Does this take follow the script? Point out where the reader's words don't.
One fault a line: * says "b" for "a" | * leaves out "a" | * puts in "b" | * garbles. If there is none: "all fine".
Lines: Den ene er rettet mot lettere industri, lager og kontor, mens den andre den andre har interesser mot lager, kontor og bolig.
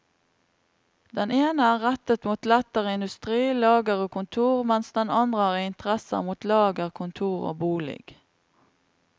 * leaves out "den andre"